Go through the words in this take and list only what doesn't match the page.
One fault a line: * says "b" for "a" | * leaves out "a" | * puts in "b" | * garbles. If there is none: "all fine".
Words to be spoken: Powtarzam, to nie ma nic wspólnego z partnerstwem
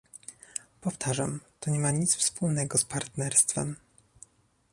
all fine